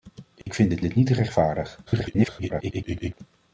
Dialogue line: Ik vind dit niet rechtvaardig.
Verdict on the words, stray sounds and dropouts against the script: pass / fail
fail